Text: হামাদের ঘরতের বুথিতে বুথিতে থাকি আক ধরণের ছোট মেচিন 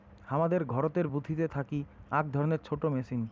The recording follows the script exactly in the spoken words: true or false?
false